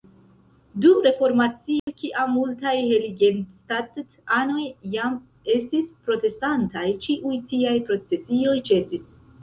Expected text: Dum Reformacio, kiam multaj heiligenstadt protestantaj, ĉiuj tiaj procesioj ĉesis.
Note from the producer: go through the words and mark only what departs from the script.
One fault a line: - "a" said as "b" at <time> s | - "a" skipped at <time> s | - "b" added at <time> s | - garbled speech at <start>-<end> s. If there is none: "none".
- "anoj jam estis" added at 4.4 s